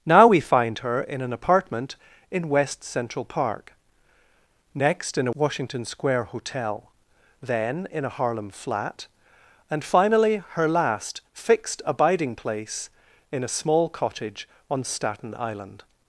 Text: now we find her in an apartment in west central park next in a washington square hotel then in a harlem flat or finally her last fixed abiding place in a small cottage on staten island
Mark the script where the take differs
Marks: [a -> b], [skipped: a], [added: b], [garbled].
now we find her in an apartment in west central park next in a washington square hotel then in a harlem flat [or -> and] finally her last fixed abiding place in a small cottage on staten island